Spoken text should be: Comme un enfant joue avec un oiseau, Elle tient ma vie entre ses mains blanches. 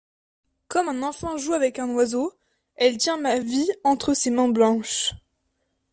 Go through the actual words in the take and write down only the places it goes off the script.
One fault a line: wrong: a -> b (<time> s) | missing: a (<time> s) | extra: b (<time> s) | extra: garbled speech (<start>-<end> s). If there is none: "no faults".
no faults